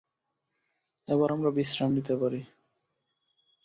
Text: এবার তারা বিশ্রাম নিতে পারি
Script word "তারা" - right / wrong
wrong